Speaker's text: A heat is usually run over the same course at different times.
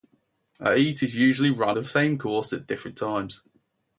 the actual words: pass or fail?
fail